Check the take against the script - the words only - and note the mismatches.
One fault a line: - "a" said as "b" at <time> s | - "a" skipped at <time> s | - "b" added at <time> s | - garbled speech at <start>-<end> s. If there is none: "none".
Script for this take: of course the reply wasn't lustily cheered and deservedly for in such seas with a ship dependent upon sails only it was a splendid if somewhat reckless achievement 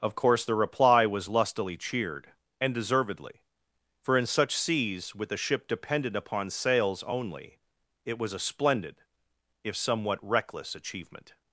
- "wasn't" said as "was" at 1.1 s